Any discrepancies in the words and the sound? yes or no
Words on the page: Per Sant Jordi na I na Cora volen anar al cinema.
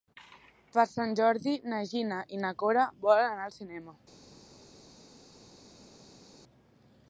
yes